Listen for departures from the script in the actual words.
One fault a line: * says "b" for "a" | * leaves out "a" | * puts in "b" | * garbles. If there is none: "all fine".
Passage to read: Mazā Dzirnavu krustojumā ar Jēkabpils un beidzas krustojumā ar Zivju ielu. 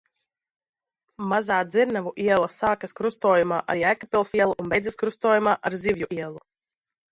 * puts in "iela sākas"
* puts in "ielu"